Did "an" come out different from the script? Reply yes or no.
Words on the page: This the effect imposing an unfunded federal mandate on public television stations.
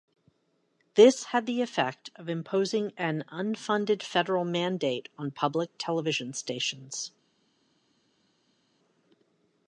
no